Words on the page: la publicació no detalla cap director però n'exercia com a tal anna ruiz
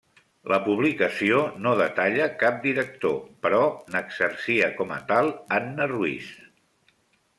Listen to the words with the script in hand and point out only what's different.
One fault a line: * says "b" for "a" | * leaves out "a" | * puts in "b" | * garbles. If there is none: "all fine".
all fine